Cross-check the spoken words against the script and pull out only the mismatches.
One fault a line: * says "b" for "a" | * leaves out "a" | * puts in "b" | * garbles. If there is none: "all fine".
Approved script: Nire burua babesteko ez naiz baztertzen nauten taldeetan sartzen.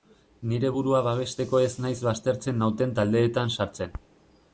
all fine